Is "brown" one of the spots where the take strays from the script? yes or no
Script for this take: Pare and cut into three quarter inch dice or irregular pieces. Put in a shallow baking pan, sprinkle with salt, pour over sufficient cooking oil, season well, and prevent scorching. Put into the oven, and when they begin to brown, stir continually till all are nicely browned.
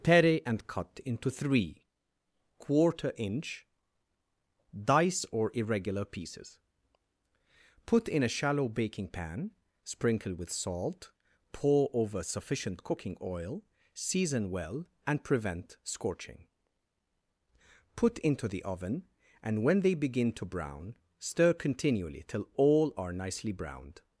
no